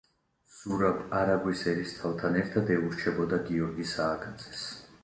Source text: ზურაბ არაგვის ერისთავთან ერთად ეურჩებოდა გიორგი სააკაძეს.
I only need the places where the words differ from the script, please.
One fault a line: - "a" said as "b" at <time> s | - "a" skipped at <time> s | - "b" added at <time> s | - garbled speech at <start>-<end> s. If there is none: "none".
none